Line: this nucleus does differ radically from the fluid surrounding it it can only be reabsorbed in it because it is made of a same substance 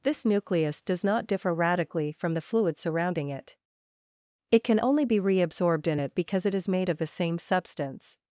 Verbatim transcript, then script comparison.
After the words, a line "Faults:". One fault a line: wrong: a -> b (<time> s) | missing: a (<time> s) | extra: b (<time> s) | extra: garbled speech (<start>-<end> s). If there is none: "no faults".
this nucleus does not differ radically from the fluid surrounding it it can only be reabsorbed in it because it is made of the same substance
Faults:
extra: not (1.0 s)
wrong: a -> the (7.0 s)